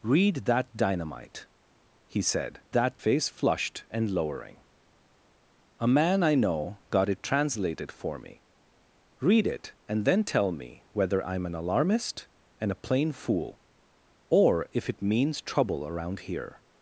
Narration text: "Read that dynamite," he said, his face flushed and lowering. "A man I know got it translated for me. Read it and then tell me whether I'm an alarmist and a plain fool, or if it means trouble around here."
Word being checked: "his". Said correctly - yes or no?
no